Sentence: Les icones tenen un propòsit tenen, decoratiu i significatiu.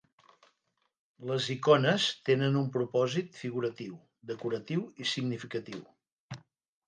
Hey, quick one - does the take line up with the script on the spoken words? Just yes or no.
no